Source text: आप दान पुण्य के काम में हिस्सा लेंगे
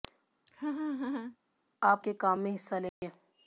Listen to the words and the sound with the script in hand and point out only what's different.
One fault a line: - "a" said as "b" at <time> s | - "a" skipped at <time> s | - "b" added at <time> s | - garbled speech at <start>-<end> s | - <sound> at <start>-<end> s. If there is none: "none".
- laugh at 0.5-1.4 s
- "दान पुण्य" skipped at 2.0 s
- dropout at 2.9-3.0 s